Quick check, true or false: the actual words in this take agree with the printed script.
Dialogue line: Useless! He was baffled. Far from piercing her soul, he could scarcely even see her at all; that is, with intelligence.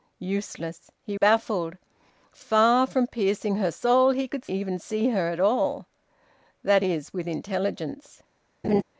false